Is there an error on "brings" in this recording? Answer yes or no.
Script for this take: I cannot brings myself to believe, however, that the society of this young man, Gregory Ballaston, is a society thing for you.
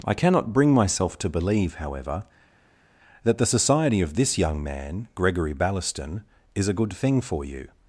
yes